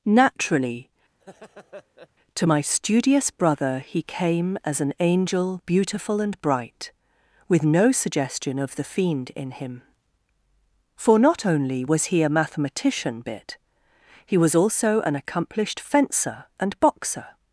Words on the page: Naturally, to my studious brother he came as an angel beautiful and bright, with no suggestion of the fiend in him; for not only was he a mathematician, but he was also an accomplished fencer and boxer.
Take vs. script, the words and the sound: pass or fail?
fail